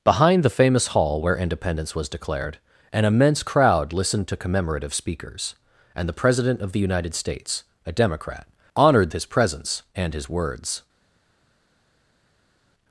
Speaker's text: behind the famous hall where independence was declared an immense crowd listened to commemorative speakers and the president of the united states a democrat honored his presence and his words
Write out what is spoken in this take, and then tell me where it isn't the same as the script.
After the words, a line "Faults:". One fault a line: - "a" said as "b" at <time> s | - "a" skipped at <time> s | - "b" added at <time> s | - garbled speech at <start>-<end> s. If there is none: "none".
behind the famous hall where independence was declared an immense crowd listened to commemorative speakers and the president of the united states a democrat honored his presence and his words
Faults:
none